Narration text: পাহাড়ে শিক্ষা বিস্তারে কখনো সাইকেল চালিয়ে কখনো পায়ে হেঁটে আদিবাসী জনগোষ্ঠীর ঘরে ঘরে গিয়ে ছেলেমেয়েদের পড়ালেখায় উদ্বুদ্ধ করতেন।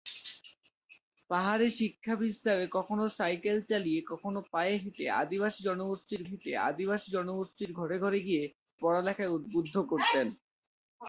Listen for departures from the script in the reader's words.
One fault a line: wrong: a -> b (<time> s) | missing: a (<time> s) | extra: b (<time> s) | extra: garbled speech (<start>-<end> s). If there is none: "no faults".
extra: হেঁটে আদিবাসী জনগোষ্ঠীর (6.2 s)
missing: ছেলেমেয়েদের (8.4 s)